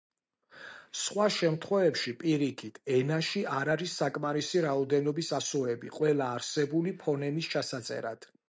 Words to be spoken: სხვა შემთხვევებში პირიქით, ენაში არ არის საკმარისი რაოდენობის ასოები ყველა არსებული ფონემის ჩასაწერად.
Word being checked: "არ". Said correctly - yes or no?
yes